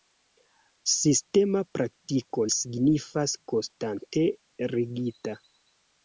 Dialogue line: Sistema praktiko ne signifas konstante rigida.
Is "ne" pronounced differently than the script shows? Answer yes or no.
yes